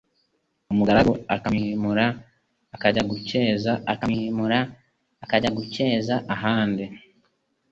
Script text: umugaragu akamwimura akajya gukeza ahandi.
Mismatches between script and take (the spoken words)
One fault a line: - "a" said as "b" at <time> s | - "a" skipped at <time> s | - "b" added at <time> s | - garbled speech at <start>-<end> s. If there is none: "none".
- "akamwimura akajya gukeza" added at 3.9 s